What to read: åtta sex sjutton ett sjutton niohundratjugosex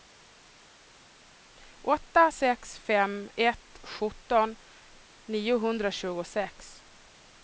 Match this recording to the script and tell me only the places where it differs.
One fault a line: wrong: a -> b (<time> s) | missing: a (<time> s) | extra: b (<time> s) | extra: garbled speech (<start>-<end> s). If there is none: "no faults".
wrong: sjutton -> fem (2.8 s)